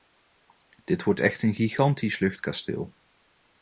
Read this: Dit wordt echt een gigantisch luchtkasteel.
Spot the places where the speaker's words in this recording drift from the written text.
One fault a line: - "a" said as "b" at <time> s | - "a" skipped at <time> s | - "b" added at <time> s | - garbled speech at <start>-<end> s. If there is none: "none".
none